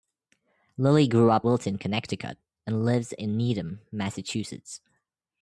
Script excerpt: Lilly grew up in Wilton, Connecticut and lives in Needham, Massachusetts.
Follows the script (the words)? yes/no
no